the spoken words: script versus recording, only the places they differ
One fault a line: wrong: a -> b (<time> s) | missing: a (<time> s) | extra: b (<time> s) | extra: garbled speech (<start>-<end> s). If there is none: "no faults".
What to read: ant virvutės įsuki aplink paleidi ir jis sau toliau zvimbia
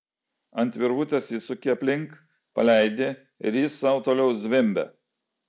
no faults